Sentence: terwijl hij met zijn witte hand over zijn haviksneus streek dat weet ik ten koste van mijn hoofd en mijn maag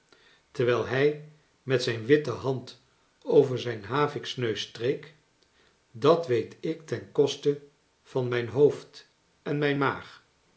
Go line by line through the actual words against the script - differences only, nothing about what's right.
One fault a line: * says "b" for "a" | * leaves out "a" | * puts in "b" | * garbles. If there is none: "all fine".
all fine